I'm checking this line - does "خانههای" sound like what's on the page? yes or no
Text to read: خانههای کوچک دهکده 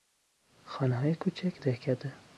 yes